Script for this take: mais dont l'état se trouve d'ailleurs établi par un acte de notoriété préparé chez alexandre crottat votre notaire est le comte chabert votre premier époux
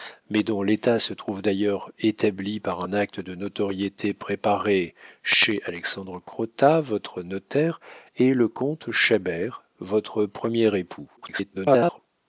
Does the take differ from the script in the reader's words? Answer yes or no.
yes